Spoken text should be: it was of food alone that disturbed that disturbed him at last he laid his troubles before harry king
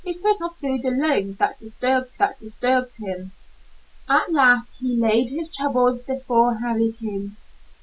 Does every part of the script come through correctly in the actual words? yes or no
yes